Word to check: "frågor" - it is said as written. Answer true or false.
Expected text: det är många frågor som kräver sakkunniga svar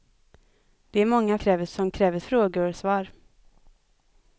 false